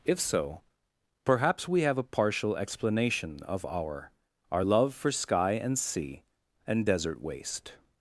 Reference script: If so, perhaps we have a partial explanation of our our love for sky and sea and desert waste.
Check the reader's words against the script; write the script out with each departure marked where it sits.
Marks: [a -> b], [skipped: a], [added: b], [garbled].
If so, perhaps we have a partial explanation of our our love for sky and sea and desert waste.